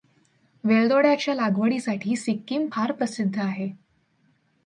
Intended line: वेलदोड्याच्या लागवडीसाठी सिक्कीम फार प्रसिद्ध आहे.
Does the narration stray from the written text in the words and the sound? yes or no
no